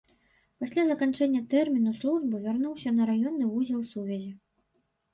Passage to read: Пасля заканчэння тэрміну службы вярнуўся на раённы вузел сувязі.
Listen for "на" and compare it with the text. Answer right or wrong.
right